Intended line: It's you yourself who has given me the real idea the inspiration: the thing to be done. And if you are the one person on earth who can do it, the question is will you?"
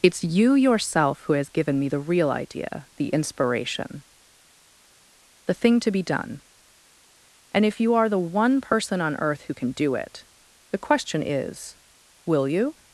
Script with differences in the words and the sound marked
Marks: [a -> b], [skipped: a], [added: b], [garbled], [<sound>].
It's you yourself who has given me the real idea the inspiration: the thing to be done. And if you are the one person on earth who can do it, the question is will you?"